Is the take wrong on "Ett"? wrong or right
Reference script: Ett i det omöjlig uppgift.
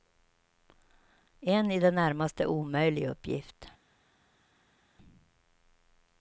wrong